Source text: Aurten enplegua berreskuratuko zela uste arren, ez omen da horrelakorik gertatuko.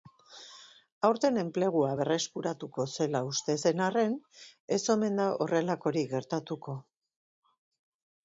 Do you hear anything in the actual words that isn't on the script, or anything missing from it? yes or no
yes